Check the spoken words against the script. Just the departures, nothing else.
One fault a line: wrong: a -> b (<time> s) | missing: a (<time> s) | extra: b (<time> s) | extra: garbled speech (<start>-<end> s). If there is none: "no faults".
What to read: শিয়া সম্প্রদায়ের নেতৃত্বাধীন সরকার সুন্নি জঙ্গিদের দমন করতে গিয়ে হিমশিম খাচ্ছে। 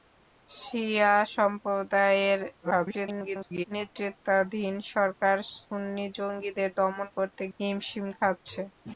extra: garbled speech (2.6-3.6 s)
missing: গিয়ে (7.4 s)